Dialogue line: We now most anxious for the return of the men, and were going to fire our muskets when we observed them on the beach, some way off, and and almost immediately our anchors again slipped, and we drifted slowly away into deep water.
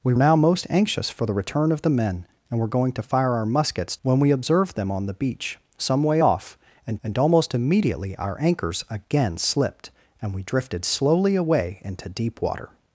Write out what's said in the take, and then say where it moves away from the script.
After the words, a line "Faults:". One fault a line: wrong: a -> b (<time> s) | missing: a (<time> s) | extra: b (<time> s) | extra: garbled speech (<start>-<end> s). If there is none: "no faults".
We now most anxious for the return of the men, and were going to fire our muskets when we observed them on the beach, some way off, and and almost immediately our anchors again slipped, and we drifted slowly away into deep water.
Faults:
no faults